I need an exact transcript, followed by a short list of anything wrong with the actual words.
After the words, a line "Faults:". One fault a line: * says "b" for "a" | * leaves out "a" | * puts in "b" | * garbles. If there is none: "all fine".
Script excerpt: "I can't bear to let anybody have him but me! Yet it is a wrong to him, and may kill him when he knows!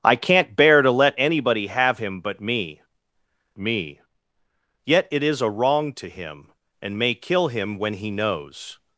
"I can't bear to let anybody have him but me me! Yet it is a wrong to him, and may kill him when he knows!
Faults:
* puts in "me"